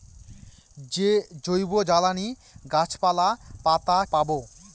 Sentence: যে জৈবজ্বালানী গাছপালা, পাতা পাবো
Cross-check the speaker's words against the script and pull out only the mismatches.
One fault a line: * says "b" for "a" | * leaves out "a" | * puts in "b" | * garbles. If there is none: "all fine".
all fine